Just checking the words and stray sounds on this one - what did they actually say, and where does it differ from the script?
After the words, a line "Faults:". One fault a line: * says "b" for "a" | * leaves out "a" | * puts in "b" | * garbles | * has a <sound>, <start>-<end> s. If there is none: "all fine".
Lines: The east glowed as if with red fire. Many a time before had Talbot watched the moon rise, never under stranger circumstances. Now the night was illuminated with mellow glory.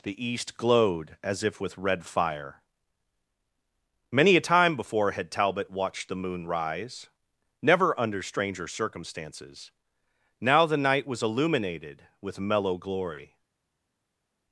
The east glowed as if with red fire. Many a time before had Talbot watched the moon rise, never under stranger circumstances. Now the night was illuminated with mellow glory.
Faults:
all fine